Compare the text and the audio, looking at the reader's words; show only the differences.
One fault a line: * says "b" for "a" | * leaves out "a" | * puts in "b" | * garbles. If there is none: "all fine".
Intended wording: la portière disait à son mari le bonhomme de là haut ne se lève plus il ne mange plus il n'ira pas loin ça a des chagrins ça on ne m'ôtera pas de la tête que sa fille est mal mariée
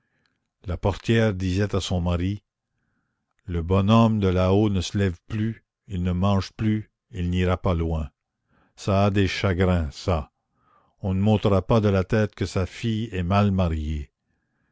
all fine